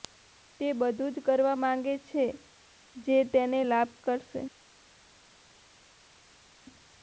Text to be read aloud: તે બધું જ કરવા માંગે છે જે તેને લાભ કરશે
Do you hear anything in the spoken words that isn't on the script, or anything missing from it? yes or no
no